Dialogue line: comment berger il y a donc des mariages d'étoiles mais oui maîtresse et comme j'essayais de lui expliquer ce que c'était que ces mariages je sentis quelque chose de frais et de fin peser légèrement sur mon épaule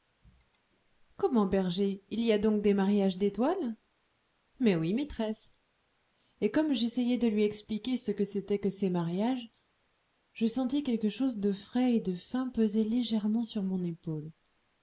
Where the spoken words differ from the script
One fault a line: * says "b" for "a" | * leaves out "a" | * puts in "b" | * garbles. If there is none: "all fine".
all fine